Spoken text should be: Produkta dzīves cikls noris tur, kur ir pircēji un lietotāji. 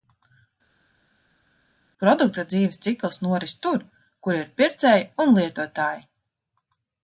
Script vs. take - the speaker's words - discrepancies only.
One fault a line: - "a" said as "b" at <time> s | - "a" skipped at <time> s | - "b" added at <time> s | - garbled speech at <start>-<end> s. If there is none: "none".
none